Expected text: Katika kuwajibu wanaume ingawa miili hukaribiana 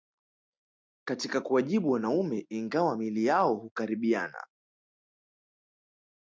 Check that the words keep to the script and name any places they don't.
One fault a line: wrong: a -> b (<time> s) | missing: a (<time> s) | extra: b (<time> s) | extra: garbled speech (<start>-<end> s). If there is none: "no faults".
extra: yao (3.3 s)